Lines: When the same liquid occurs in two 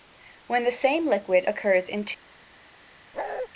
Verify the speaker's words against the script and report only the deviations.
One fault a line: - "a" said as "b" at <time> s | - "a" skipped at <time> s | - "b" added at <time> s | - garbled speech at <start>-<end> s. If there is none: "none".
none